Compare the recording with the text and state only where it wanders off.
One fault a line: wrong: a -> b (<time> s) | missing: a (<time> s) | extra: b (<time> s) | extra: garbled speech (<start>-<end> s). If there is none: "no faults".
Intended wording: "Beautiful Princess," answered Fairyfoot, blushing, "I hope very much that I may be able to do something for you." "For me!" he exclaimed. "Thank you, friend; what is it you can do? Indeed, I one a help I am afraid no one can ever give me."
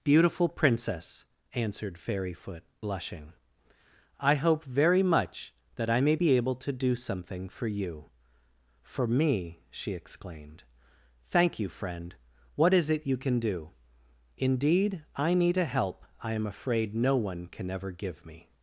wrong: he -> she (9.7 s)
wrong: one -> need (15.3 s)